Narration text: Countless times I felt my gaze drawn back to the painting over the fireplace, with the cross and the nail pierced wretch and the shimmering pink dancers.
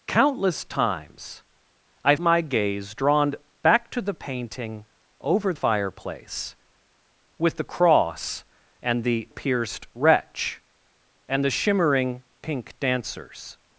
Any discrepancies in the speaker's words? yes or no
yes